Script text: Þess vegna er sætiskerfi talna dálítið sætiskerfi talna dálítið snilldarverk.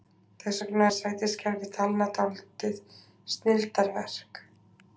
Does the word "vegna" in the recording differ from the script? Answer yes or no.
no